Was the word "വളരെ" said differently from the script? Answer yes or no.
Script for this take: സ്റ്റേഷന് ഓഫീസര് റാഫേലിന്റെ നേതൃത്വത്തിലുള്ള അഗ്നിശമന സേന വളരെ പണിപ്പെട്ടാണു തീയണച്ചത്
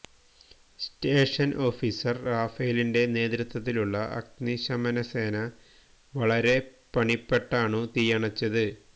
no